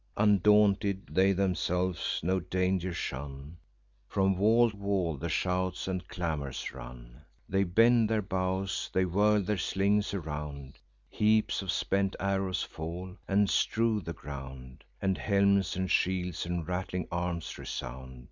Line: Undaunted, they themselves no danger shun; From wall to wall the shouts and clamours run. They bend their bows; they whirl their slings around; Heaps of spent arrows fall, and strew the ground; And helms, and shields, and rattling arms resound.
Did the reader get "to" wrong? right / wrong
wrong